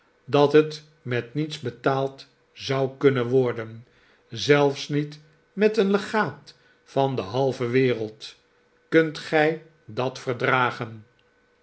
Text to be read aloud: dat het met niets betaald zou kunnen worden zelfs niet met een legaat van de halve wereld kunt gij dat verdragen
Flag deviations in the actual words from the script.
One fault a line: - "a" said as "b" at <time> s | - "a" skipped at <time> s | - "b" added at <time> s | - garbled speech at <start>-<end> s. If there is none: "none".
none